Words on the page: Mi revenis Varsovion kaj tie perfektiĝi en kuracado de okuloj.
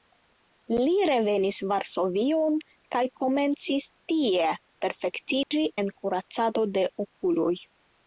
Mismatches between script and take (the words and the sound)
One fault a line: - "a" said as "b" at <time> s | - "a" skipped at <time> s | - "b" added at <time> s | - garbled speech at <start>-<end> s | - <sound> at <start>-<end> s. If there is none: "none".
- "Mi" said as "Li" at 0.8 s
- "komencis" added at 3.2 s
- dropout at 5.4-5.5 s